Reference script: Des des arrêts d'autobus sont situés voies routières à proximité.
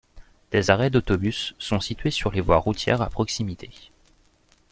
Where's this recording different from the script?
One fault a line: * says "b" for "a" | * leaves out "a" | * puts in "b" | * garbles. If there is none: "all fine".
* leaves out "des"
* puts in "sur les"